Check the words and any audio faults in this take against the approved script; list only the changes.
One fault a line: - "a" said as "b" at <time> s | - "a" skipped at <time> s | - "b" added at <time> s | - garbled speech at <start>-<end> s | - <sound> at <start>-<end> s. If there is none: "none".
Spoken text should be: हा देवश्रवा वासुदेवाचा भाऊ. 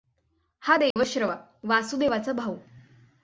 - dropout at 0.9-1.0 s